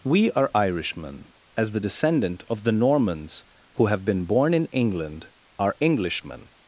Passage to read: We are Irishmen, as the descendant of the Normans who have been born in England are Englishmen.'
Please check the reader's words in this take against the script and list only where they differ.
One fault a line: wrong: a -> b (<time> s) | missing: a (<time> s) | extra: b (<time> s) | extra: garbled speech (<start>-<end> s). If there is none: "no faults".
no faults